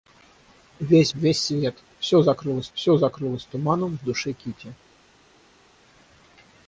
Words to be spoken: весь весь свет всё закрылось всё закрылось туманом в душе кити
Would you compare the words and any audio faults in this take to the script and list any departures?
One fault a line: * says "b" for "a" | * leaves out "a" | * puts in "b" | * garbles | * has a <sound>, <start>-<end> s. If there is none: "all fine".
all fine